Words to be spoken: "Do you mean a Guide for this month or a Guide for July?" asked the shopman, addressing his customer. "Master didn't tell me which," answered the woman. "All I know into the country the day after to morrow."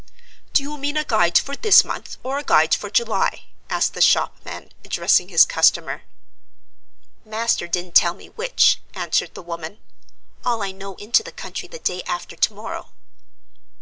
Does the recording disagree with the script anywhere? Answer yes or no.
no